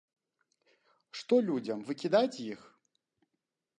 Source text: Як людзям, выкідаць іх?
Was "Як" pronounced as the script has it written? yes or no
no